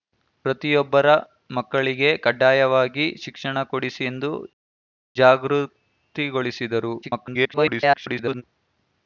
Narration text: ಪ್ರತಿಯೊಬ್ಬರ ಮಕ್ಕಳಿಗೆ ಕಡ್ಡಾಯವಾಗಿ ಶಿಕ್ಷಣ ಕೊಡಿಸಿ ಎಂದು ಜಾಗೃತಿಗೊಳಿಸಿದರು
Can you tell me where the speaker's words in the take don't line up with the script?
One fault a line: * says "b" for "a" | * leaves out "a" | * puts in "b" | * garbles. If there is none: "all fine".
* garbles